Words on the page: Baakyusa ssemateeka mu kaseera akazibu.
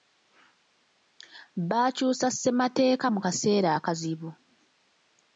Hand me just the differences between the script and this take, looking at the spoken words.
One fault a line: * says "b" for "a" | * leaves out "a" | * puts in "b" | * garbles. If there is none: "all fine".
all fine